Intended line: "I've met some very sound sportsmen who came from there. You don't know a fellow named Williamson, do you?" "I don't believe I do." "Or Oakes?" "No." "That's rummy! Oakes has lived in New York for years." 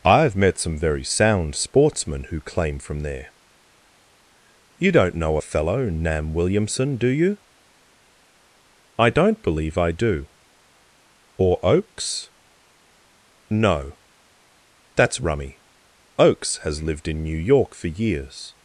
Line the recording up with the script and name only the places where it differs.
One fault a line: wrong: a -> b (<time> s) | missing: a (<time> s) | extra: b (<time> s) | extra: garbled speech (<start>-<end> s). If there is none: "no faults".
wrong: came -> claim (2.4 s)
wrong: named -> nam (5.9 s)